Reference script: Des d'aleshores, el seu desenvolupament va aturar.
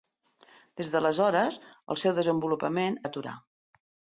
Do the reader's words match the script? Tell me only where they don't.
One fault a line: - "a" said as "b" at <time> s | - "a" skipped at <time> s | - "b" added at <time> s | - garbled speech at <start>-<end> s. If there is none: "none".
none